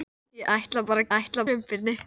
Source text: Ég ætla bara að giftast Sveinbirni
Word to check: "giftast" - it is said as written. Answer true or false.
false